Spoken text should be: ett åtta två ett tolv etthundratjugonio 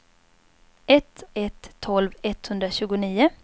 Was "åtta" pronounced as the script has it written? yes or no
no